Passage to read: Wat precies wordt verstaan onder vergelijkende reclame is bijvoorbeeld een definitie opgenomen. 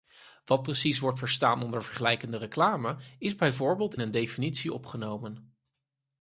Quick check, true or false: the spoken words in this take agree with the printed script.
true